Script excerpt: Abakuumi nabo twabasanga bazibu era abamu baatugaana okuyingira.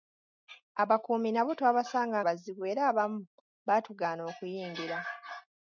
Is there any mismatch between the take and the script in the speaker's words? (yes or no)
no